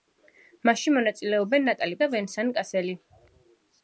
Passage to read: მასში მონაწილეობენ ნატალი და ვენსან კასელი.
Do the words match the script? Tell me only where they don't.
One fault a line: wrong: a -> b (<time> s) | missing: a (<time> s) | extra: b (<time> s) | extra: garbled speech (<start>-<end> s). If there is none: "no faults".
no faults